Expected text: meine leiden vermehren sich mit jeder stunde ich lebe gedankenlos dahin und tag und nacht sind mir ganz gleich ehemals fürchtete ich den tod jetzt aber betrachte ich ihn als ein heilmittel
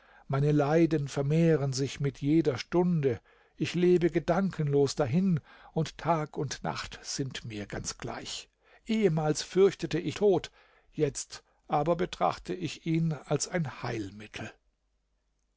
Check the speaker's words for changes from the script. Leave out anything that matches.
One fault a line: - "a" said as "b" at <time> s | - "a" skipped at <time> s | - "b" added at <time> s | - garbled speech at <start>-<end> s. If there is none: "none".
- "den" skipped at 10.2 s